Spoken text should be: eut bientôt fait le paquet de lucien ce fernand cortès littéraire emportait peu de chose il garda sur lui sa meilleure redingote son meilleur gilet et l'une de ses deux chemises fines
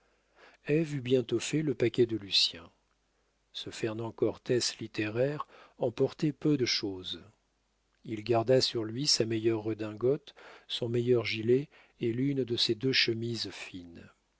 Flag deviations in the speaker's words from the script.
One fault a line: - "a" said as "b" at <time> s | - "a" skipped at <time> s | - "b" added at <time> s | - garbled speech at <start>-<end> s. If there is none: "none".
none